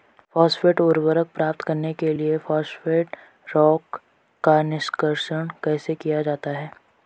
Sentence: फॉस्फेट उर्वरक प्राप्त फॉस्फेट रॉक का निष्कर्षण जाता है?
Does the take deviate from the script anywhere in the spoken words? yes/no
yes